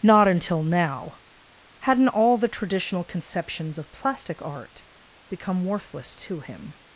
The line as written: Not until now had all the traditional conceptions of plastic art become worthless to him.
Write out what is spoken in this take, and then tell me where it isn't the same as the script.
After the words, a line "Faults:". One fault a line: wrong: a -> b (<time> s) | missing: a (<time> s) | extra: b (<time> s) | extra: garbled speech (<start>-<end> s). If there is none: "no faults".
Not until now hadn't all the traditional conceptions of plastic art become worthless to him.
Faults:
wrong: had -> hadn't (1.8 s)